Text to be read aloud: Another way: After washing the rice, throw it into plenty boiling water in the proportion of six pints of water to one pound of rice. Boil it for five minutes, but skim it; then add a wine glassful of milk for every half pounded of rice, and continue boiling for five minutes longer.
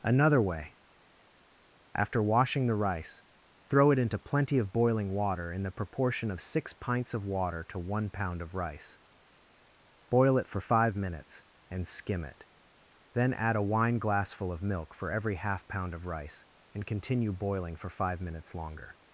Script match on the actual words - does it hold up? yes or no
no